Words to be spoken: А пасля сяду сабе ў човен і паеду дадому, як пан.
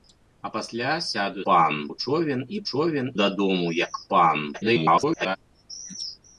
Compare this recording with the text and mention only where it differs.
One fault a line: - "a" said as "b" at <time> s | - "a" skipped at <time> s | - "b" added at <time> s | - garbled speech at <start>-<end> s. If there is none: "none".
- "сабе" said as "пан" at 1.5 s
- "паеду" said as "човен" at 2.7 s
- garbled speech at 4.5-5.4 s